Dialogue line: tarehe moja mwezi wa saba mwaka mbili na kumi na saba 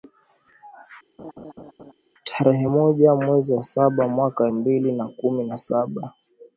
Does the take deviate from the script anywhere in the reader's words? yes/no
no